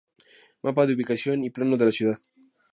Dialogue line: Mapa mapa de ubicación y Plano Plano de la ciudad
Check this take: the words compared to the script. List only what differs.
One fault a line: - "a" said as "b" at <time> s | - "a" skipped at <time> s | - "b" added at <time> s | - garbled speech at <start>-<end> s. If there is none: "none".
- "mapa" skipped at 0.9 s
- "Plano" skipped at 1.7 s